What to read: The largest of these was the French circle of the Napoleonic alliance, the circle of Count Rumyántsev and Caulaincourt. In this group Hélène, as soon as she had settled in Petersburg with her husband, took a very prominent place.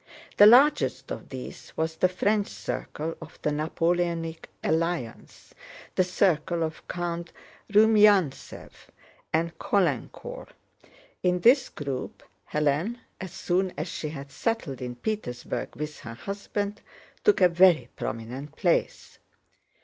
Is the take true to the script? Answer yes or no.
yes